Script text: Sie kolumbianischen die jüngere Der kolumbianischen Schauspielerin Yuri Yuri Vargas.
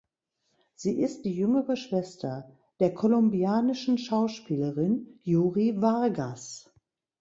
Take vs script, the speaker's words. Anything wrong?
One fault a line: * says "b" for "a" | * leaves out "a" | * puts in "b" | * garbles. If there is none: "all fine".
* says "ist" for "kolumbianischen"
* puts in "Schwester"
* leaves out "Yuri"